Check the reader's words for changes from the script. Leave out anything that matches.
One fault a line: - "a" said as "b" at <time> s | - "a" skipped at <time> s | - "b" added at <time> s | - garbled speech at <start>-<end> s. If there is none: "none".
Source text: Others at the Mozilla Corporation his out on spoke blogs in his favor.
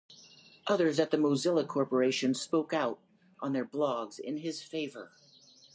- "his" said as "spoke" at 2.3 s
- "spoke" said as "their" at 3.5 s